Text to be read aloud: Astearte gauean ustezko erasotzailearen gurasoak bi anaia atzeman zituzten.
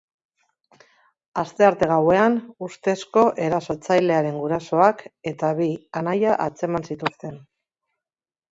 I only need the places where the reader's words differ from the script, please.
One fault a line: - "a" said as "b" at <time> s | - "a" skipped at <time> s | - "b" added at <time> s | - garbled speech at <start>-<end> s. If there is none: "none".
- "eta" added at 5.3 s